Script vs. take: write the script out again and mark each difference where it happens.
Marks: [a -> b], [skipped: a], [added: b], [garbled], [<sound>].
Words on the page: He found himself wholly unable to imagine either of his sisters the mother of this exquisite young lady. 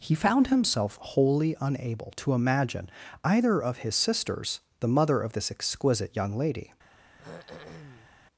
He found himself wholly unable to imagine either of his sisters the mother of this exquisite young lady. [throat clearing]